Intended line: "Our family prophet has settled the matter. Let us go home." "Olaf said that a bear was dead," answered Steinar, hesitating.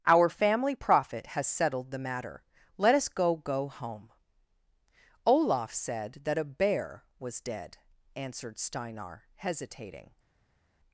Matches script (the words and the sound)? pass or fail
fail